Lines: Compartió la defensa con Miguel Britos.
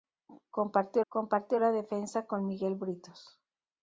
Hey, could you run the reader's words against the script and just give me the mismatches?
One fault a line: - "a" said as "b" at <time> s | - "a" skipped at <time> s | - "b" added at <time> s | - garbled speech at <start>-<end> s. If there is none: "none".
- "compartió" added at 1.1 s